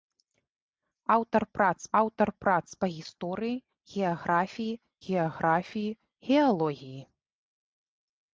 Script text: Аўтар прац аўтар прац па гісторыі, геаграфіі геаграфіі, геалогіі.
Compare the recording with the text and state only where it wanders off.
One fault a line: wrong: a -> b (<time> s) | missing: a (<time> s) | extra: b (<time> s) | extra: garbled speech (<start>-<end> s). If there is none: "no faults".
no faults